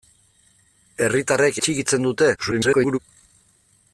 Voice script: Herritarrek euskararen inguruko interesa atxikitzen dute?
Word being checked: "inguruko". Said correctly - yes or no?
no